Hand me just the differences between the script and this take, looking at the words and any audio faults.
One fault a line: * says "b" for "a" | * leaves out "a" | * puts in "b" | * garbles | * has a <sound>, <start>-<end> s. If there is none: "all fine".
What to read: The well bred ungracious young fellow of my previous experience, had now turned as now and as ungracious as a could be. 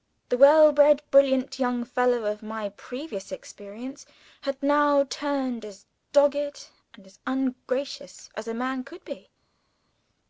* says "brilliant" for "ungracious"
* says "dogged" for "now"
* puts in "man"